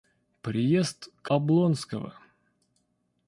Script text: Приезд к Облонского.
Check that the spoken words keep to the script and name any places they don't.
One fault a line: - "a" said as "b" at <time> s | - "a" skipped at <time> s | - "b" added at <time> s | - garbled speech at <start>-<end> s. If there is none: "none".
none